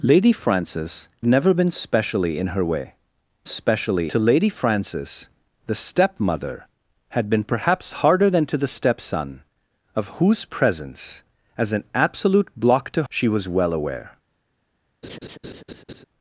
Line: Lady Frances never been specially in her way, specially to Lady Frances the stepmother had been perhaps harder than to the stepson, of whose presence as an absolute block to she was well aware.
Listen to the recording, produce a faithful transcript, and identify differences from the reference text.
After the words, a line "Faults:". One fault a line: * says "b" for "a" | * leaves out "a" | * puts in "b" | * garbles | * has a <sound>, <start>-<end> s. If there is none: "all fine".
Lady Frances never been specially in her way, specially to Lady Frances the stepmother had been perhaps harder than to the stepson, of whose presence as an absolute block to she was well aware.
Faults:
* has a laugh, 15.0-16.0 s